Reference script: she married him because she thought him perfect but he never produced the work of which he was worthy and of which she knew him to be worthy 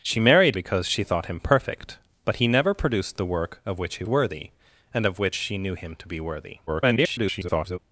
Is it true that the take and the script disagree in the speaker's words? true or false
true